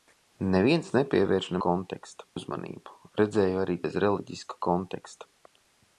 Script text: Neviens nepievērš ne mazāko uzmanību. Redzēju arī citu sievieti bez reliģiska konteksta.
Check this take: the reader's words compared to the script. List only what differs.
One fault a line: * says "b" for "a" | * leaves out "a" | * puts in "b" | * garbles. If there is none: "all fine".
* says "konteksta" for "mazāko"
* leaves out "citu sievieti"